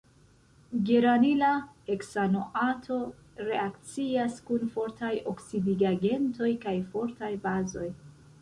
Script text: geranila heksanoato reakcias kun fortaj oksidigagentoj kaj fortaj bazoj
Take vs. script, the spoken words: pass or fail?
pass